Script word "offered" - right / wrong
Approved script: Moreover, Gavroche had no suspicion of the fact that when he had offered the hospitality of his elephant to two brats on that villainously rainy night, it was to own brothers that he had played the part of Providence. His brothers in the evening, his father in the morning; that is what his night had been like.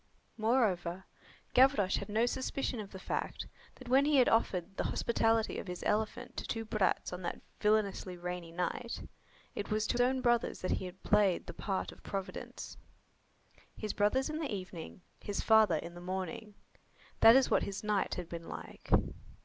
right